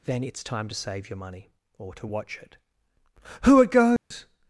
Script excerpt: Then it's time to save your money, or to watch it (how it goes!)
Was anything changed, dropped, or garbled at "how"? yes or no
yes